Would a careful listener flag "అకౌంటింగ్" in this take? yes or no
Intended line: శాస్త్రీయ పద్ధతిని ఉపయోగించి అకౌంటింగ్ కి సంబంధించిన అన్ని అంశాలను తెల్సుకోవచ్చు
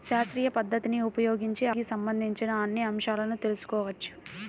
yes